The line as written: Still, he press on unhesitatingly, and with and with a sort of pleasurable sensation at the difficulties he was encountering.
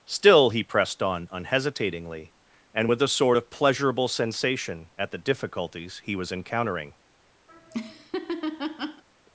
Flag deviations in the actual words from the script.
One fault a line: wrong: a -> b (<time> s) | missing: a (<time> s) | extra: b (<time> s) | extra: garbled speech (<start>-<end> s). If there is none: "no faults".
wrong: press -> pressed (0.6 s)
missing: and with (3.0 s)